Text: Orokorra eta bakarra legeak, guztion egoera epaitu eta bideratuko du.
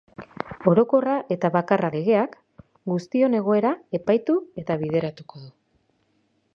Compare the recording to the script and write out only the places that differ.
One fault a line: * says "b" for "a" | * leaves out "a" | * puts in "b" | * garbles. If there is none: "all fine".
all fine